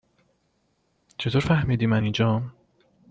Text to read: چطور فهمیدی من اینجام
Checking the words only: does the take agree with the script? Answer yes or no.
yes